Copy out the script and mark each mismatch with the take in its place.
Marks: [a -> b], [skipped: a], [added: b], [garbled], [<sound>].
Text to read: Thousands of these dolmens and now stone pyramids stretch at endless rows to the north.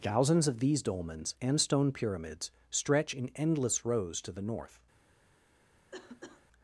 Thousands of these dolmens and [skipped: now] stone pyramids stretch [at -> in] endless rows to the north. [cough]